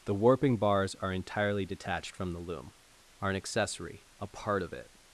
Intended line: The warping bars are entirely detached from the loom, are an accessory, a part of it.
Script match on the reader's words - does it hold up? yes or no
yes